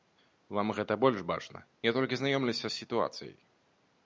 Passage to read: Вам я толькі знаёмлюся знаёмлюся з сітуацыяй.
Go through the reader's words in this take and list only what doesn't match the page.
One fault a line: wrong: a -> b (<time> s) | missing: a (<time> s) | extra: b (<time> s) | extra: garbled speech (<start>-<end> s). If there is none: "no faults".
extra: гэта больш бачна (0.8 s)
missing: знаёмлюся (2.6 s)